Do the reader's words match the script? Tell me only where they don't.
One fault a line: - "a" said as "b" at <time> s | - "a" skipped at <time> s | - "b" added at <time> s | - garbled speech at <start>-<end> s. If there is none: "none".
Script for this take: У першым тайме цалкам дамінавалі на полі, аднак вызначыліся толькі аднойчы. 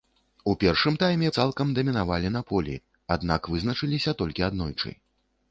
none